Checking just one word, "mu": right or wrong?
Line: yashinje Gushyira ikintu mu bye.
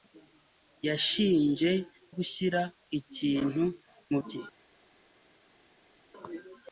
right